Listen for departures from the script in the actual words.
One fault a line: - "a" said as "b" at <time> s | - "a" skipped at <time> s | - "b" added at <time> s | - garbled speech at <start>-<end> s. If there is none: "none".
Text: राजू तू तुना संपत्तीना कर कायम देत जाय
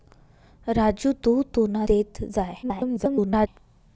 - "संपत्तीना कर कायम" skipped at 1.8 s
- garbled speech at 2.6-3.5 s